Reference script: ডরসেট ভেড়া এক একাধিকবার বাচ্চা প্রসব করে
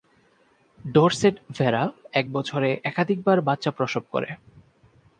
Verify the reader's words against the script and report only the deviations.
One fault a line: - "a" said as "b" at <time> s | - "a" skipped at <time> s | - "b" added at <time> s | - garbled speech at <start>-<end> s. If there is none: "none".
- "বছরে" added at 2.3 s